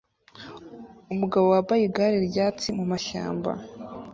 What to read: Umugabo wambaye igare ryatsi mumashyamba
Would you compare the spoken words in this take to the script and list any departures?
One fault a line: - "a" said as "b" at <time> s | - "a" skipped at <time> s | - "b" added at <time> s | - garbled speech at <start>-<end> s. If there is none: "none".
none